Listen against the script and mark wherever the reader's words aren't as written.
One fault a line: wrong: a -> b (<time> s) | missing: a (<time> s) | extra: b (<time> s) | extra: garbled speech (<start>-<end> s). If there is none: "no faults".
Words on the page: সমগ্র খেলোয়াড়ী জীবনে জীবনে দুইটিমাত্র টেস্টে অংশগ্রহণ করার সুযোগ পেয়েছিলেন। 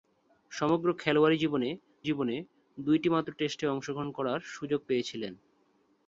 no faults